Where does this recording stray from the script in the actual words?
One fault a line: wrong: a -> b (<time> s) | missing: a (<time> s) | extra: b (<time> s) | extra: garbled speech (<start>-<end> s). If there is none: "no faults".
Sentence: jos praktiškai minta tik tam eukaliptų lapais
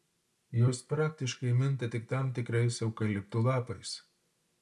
extra: tikrais (2.4 s)